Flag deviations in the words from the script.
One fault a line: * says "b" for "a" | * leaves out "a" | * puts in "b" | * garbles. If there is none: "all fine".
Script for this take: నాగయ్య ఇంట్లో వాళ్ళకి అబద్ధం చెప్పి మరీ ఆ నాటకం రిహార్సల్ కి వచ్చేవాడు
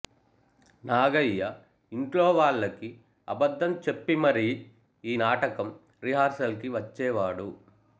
* says "ఈ" for "ఆ"